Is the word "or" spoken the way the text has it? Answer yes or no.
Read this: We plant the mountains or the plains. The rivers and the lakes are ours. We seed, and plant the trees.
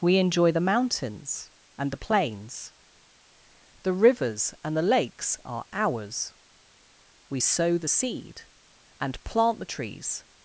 no